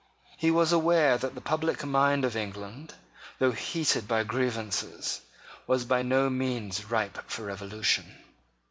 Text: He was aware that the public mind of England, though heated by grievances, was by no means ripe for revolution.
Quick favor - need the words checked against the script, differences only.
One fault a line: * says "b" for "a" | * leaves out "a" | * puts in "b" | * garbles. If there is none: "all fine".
all fine